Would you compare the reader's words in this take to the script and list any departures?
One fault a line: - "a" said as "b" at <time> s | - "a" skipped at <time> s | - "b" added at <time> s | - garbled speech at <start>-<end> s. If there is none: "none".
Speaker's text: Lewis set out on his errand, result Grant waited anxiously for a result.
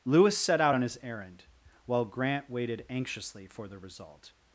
- "result" said as "while" at 1.9 s
- "a" said as "the" at 3.7 s